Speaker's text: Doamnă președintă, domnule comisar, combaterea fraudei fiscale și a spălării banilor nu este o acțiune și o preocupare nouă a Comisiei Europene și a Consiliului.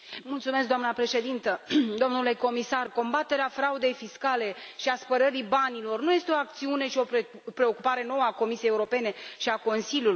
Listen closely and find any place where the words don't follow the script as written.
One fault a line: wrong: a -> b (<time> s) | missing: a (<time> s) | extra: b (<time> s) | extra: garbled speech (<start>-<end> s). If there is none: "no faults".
no faults